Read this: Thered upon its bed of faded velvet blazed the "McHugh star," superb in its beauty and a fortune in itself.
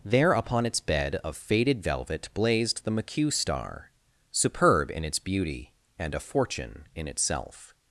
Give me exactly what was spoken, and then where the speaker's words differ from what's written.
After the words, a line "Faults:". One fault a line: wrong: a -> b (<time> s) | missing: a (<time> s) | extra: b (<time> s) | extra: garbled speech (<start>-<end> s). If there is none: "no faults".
There upon its bed of faded velvet blazed the "McHugh star," superb in its beauty and a fortune in itself.
Faults:
wrong: Thered -> There (0.0 s)